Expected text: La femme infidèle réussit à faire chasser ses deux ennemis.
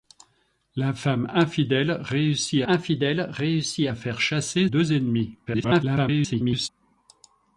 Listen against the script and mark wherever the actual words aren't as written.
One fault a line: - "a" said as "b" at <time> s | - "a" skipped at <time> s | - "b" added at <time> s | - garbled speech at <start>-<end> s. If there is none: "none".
- "infidèle réussit" added at 2.6 s
- "ses" skipped at 4.7 s
- garbled speech at 5.5-6.7 s